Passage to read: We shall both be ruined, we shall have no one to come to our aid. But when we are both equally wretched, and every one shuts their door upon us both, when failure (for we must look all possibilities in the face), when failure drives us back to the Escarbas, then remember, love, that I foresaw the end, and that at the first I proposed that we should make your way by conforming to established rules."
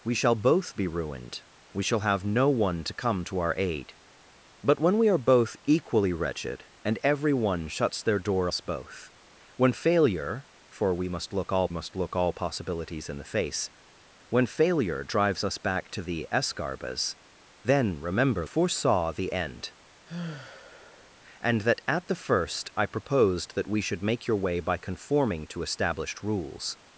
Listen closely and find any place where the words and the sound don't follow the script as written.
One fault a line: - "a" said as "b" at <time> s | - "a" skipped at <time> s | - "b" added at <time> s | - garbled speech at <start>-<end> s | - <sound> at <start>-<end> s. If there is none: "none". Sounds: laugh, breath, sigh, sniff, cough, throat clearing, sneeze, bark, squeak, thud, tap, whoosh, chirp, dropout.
- "upon" skipped at 8.5 s
- "must look all" added at 11.7 s
- "love that I" skipped at 18.5 s
- sigh at 20.1-21.2 s